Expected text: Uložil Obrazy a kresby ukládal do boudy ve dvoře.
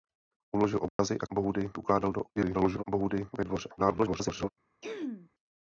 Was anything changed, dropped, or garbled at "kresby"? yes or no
yes